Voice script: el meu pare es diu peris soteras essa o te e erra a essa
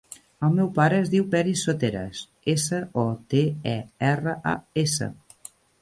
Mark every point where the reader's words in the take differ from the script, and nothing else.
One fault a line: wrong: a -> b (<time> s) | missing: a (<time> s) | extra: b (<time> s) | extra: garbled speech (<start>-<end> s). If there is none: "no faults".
no faults